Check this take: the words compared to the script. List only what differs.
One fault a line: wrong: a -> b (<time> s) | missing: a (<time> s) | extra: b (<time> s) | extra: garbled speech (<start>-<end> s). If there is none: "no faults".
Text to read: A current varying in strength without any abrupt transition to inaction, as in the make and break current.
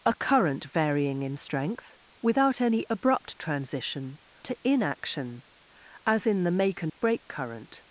no faults